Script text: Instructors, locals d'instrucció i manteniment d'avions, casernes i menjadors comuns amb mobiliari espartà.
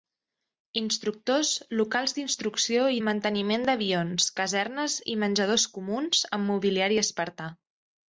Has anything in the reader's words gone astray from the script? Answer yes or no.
no